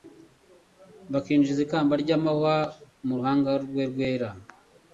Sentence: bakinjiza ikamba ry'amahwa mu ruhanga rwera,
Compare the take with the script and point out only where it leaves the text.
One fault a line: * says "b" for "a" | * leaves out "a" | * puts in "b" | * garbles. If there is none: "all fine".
* puts in "rwe"